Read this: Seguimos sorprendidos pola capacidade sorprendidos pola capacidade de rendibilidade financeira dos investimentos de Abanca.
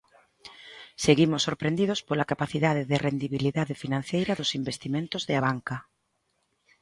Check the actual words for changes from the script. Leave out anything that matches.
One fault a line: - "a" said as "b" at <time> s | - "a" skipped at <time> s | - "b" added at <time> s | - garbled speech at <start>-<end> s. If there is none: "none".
- "sorprendidos pola capacidade" skipped at 2.8 s